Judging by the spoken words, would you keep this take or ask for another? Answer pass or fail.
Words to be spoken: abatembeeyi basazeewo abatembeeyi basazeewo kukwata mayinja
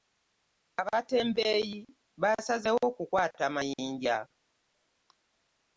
fail